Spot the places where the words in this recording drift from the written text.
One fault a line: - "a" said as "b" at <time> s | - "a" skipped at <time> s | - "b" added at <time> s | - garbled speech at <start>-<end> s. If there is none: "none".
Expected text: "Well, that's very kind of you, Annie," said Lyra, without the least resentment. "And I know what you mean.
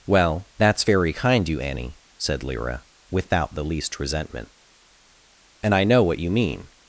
- "of" skipped at 1.5 s